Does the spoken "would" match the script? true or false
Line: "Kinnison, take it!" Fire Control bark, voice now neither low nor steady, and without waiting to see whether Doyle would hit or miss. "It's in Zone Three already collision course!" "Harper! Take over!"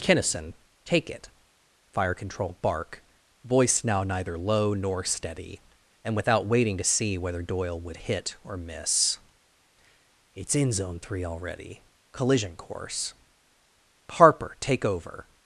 true